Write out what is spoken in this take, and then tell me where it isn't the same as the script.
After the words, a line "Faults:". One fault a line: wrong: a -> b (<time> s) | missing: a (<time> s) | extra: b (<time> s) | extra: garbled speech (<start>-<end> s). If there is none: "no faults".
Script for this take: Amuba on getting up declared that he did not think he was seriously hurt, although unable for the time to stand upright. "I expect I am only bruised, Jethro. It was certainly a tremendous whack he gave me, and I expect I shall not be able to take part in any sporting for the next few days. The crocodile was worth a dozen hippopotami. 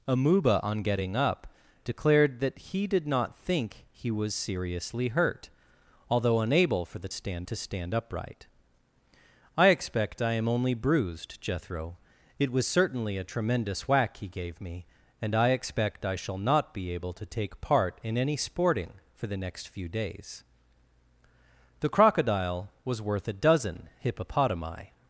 Amuba on getting up declared that he did not think he was seriously hurt, although unable for the stand to stand upright. "I expect I am only bruised, Jethro. It was certainly a tremendous whack he gave me, and I expect I shall not be able to take part in any sporting for the next few days. The crocodile was worth a dozen hippopotami.
Faults:
wrong: time -> stand (7.1 s)